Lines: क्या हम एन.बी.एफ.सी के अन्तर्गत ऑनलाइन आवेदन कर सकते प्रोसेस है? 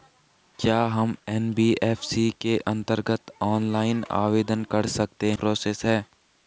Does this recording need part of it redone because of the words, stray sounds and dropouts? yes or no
no